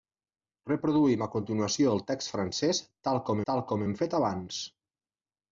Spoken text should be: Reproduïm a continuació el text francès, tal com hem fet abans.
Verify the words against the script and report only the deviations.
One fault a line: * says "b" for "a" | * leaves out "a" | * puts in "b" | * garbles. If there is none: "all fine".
* puts in "tal com"